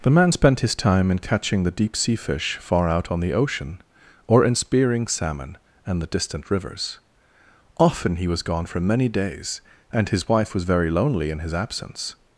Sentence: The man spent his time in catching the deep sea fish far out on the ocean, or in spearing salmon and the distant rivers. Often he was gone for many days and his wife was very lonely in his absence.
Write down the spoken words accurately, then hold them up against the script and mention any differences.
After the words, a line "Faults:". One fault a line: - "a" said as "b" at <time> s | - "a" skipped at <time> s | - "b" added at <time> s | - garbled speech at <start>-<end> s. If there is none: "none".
The man spent his time in catching the deep sea fish far out on the ocean, or in spearing salmon and the distant rivers. Often he was gone for many days and his wife was very lonely in his absence.
Faults:
none